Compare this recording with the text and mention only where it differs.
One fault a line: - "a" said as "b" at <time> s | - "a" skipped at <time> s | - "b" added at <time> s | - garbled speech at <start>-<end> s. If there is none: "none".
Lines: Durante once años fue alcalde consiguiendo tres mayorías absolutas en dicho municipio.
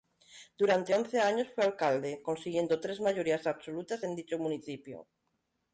none